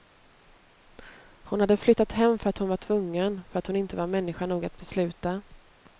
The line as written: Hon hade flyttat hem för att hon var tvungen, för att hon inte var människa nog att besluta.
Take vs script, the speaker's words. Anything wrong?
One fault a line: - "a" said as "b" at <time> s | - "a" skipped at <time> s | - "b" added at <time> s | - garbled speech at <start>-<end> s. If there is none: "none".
none